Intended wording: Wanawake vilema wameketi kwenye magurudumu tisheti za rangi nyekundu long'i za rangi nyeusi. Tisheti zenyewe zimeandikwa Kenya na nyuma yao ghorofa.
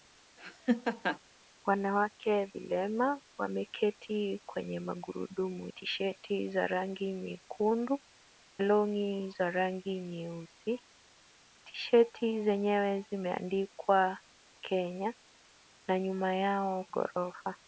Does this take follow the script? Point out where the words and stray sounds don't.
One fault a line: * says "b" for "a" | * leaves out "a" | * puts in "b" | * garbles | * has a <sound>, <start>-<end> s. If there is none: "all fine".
* has a laugh, 0.4-1.2 s